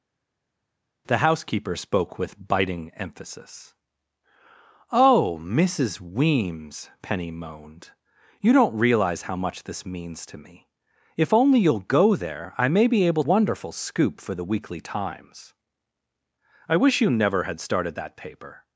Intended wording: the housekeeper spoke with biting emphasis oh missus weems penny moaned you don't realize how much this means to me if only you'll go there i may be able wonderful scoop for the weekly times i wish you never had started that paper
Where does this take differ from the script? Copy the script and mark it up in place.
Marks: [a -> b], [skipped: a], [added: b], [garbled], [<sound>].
the housekeeper spoke with biting emphasis oh missus weems penny moaned you don't realize how much this means to me if only you'll go there i may be able wonderful scoop for the weekly times i wish you never had started that paper